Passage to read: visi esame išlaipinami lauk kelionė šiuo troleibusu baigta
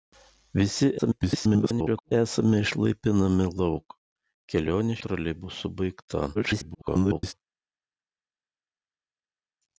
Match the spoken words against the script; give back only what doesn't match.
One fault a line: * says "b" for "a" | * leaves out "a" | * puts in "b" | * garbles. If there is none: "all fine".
* garbles
* leaves out "šiuo"
* garbles